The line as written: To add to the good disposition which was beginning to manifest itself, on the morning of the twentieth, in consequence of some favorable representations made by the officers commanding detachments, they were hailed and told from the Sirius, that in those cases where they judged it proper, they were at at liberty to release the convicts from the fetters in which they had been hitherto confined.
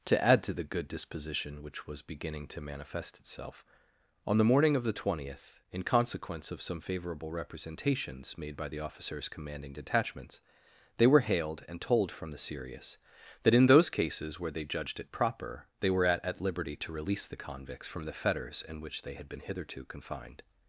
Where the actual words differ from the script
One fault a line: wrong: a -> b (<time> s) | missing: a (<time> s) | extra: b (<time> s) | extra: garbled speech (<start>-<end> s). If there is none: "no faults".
no faults